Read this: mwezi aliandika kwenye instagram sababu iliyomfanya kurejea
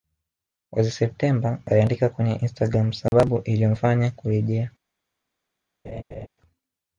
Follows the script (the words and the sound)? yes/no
no